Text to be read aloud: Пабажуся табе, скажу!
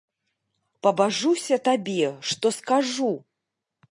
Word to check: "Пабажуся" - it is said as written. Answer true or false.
true